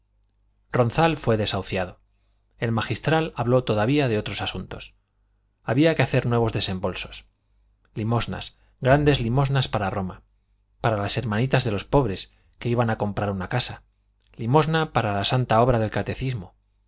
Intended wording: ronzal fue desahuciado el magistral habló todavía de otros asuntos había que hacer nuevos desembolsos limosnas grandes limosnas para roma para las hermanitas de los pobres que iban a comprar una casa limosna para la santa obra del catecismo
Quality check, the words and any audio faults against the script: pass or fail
pass